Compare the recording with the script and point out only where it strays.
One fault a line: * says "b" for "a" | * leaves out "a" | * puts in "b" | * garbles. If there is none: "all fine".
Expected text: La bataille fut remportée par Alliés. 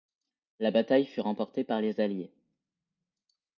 * puts in "les"